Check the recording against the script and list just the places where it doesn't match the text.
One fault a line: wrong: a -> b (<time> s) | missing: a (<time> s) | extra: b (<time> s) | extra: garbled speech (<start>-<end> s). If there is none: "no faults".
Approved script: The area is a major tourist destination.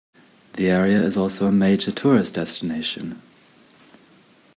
extra: also (1.2 s)